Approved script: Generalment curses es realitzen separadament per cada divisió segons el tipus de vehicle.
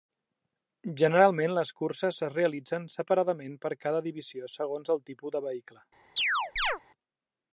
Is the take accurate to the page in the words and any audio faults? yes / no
no